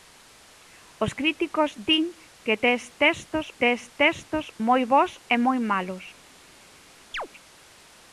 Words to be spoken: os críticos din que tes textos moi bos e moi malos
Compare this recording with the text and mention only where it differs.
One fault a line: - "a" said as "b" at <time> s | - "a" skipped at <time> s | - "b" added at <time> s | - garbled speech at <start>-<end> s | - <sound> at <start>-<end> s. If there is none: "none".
- "tes textos" added at 3.6 s
- chirp at 7.1-7.3 s